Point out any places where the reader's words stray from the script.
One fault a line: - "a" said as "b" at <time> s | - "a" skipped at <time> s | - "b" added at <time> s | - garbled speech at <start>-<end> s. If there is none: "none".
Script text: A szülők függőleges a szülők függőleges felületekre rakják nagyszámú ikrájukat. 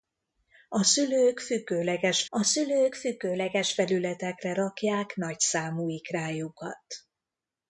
none